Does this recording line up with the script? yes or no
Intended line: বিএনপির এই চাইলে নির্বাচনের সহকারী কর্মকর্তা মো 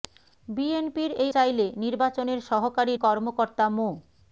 yes